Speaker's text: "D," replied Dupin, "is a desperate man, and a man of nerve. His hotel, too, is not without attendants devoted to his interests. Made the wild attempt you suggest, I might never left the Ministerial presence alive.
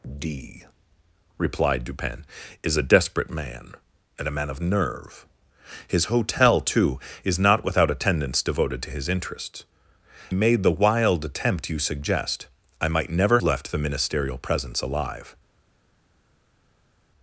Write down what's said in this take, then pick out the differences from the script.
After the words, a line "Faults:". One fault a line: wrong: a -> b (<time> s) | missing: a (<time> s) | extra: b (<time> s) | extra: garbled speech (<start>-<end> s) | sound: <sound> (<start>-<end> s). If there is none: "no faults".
"D," replied Dupin, "is a desperate man, and a man of nerve. His hotel, too, is not without attendants devoted to his interests. Made the wild attempt you suggest, I might never left the Ministerial presence alive.
Faults:
no faults